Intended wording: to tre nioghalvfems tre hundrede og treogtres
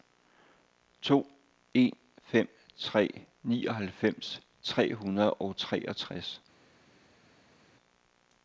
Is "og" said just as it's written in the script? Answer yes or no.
yes